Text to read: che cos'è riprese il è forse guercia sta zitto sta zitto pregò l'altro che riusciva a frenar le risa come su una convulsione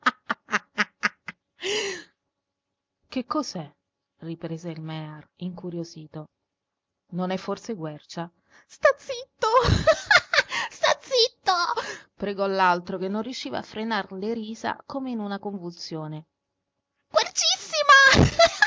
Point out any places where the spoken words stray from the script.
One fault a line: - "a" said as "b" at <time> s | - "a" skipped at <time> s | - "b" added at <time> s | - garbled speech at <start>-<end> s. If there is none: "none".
- "mear incuriosito non" added at 4.8 s
- "non" added at 13.1 s
- "su" said as "in" at 15.1 s